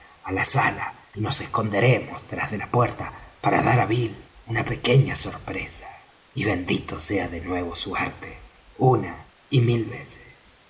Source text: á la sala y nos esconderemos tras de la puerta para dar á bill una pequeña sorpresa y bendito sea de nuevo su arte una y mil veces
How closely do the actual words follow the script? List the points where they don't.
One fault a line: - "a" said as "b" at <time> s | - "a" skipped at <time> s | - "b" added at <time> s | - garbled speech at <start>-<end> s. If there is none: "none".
none